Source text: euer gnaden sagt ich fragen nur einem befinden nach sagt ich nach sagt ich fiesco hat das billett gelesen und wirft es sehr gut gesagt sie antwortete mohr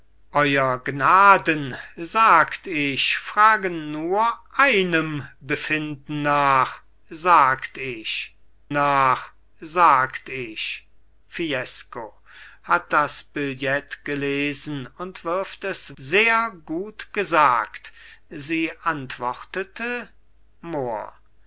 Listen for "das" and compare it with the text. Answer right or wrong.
right